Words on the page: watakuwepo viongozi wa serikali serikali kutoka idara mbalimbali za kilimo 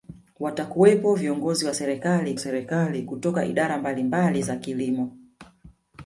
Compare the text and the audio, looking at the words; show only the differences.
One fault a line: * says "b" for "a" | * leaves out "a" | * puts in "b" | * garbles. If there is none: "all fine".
all fine